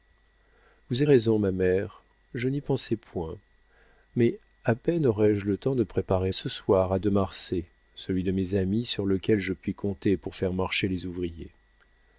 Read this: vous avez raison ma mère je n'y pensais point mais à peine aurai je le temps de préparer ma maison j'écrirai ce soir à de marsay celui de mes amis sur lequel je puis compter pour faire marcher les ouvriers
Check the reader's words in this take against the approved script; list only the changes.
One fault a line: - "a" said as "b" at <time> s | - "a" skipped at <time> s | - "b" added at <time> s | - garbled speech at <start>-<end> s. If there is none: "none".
- "avez" skipped at 1.0 s
- "ma maison j'écrirai" skipped at 6.3 s